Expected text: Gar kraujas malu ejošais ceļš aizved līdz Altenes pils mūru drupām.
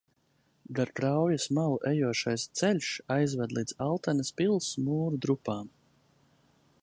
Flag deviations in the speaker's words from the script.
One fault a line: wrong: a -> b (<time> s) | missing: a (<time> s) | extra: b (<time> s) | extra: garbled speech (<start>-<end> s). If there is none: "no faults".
no faults